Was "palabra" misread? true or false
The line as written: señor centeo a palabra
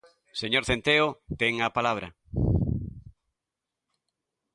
false